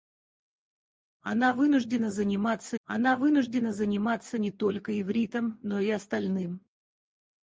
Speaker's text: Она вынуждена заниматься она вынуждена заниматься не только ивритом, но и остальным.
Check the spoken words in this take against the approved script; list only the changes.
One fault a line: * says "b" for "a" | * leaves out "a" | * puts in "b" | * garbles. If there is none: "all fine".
all fine